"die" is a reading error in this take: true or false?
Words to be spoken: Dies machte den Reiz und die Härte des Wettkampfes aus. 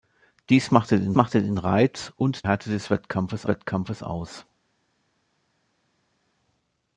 true